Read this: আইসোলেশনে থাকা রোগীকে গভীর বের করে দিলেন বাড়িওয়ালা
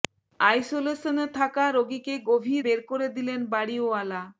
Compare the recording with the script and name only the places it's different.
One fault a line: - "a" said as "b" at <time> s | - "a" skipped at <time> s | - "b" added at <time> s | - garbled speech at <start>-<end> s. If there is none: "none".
none